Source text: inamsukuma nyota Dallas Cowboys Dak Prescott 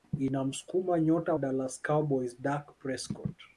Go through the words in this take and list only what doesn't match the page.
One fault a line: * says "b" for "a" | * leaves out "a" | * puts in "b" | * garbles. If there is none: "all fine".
all fine